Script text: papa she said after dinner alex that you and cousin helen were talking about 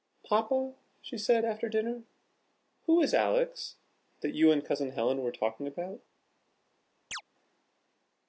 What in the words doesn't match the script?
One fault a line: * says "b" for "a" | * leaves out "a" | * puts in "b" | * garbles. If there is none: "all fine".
* puts in "who is"